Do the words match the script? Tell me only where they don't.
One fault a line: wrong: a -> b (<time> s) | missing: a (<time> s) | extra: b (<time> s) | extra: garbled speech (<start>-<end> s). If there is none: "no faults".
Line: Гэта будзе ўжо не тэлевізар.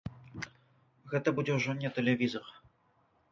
no faults